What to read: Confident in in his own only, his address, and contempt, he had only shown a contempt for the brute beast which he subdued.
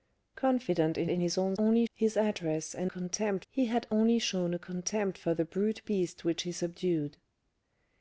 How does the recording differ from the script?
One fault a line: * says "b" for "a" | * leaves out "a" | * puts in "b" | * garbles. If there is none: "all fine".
all fine